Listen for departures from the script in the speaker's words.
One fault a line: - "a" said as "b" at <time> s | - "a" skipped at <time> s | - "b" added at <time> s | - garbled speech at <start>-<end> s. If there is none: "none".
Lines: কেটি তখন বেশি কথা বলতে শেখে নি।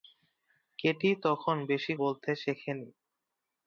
- "কথা" skipped at 1.9 s